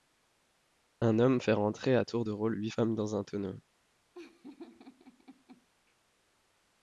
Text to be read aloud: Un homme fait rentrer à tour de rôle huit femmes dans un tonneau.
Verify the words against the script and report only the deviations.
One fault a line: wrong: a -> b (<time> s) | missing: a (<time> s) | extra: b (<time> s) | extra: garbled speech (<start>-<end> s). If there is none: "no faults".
no faults